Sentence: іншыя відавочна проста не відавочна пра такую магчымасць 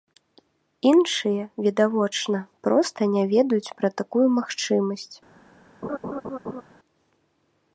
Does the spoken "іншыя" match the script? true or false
true